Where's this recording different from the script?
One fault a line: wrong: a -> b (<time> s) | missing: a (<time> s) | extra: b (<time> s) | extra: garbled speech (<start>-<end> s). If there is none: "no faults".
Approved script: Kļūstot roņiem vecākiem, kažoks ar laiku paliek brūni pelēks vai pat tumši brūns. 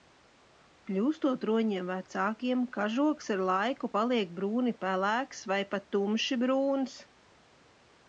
no faults